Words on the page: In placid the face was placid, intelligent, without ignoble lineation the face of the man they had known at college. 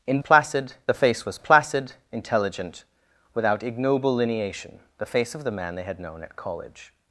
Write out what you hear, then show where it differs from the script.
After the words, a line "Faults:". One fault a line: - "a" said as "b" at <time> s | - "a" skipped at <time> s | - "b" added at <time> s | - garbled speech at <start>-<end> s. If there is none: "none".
In placid the face was placid, intelligent, without ignoble lineation the face of the man they had known at college.
Faults:
none